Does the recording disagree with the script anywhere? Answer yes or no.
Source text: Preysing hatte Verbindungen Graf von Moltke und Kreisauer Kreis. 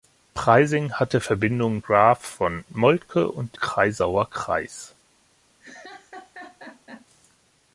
no